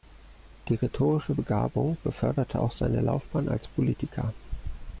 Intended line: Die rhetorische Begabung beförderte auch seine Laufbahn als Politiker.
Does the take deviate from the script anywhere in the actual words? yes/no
no